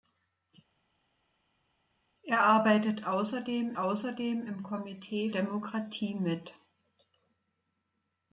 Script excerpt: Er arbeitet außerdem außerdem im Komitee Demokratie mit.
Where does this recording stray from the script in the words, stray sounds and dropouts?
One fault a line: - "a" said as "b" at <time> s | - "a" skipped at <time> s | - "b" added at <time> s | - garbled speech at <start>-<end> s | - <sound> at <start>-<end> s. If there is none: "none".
none